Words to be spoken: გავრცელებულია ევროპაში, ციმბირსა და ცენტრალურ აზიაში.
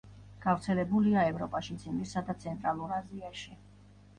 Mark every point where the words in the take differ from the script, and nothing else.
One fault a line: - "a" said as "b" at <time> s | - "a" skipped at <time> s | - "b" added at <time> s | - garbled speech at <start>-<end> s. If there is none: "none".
none